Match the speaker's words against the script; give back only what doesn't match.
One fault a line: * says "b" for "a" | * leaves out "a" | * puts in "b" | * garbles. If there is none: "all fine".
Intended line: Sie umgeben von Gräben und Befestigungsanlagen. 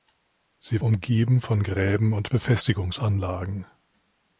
all fine